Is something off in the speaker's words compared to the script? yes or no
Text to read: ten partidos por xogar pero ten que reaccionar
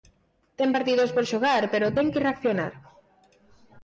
no